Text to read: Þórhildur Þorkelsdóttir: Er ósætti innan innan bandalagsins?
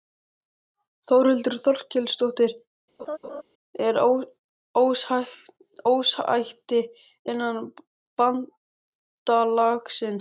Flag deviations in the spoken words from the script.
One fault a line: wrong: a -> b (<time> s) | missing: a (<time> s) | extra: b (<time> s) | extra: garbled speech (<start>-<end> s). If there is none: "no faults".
missing: innan (7.6 s)